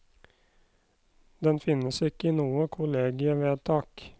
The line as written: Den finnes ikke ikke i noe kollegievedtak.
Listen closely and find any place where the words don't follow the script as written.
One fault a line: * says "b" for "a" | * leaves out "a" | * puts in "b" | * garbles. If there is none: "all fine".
* leaves out "ikke"